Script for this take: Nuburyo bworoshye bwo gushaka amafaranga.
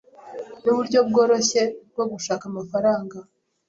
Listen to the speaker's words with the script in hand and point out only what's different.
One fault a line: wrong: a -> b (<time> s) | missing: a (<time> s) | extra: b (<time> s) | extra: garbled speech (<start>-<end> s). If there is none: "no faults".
no faults